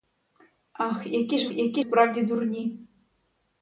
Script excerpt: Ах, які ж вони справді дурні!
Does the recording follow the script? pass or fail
fail